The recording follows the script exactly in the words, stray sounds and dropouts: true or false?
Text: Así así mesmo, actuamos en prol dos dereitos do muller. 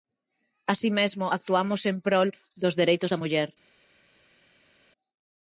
false